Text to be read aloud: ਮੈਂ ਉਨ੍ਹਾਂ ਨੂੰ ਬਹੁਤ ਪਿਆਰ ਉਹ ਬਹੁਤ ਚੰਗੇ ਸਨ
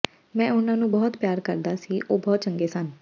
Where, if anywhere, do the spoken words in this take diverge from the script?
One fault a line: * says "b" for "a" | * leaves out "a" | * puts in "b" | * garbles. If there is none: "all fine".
* puts in "ਕਰਦਾ ਸੀ"